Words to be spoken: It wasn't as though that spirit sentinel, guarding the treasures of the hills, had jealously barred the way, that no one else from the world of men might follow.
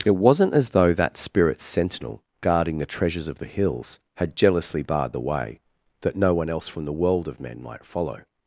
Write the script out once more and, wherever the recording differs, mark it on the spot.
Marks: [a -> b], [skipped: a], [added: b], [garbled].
It wasn't as though that spirit sentinel, guarding the treasures of the hills, had jealously barred the way, that no one else from the world of men might follow.